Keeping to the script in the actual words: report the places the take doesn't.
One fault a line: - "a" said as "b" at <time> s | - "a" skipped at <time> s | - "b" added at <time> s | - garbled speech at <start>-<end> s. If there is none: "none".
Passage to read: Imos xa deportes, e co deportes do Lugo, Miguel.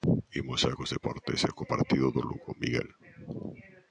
- "cos" added at 0.8 s
- "deportes" said as "partido" at 1.7 s